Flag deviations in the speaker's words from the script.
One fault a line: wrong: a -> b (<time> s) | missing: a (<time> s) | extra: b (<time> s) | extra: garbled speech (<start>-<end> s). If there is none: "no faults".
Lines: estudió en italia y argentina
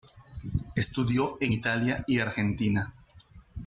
no faults